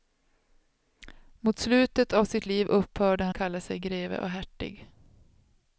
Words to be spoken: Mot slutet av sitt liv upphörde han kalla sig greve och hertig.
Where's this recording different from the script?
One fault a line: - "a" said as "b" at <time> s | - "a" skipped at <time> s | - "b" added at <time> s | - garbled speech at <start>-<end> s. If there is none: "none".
none